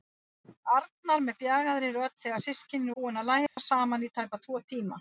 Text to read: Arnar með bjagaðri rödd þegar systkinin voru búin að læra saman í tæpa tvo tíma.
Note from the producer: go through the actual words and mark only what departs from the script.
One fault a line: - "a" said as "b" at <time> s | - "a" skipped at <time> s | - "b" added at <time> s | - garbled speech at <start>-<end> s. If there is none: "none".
- "voru" skipped at 3.0 s